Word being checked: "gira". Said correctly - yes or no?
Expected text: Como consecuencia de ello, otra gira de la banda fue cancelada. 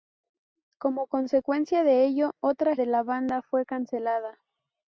no